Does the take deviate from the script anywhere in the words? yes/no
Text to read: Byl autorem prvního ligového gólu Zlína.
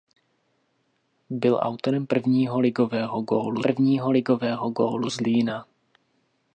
yes